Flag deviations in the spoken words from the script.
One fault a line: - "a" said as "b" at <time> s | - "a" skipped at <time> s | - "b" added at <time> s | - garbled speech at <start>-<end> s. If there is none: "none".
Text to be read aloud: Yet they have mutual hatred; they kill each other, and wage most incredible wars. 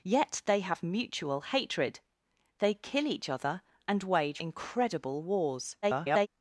- "most" skipped at 4.4 s
- garbled speech at 5.8-6.3 s